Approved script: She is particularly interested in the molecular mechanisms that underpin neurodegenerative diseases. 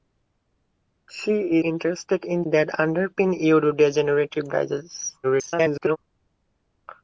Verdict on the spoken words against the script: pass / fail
fail